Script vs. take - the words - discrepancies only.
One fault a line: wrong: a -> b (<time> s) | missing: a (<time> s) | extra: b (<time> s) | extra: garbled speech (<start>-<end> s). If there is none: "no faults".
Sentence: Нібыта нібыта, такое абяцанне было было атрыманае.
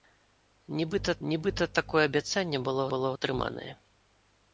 no faults